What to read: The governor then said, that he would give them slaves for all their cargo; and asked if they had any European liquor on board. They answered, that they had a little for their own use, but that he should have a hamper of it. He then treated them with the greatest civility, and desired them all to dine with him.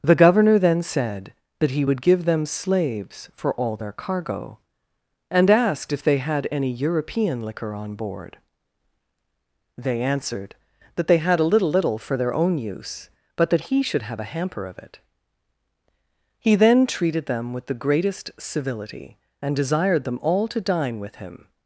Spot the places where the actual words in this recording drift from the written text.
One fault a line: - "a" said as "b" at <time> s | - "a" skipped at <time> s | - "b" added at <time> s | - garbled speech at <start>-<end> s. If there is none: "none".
- "little" added at 11.7 s